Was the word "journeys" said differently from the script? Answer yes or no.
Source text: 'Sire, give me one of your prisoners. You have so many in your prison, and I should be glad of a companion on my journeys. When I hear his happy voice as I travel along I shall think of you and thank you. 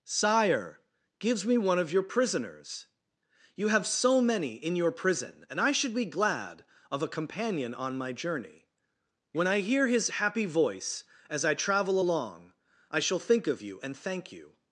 yes